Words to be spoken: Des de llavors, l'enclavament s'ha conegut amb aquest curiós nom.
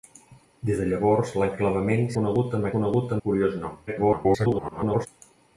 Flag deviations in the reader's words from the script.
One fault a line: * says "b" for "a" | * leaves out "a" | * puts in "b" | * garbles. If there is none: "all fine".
* leaves out "s'ha"
* says "conegut" for "aquest"
* garbles